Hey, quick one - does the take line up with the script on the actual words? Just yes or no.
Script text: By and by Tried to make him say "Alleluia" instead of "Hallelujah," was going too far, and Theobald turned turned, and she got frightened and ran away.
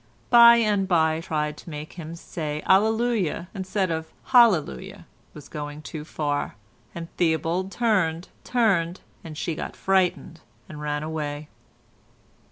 yes